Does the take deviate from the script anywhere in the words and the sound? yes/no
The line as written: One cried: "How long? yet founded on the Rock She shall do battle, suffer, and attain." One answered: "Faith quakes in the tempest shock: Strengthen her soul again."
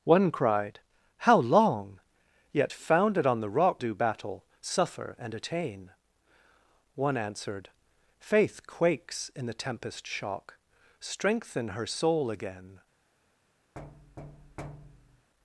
yes